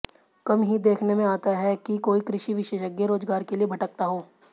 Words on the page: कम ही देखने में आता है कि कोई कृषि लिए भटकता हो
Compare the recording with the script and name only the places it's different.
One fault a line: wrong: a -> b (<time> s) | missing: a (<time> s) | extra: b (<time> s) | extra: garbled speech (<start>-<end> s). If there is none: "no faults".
extra: विशेषज्ञ रोजगार के (2.5 s)